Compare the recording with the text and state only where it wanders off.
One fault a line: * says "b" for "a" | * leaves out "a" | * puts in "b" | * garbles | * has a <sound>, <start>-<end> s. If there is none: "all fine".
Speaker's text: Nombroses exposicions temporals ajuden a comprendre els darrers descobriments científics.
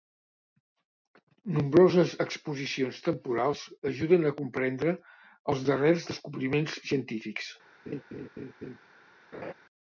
* has a laugh, 7.9-8.8 s
* has a laugh, 9.3-9.5 s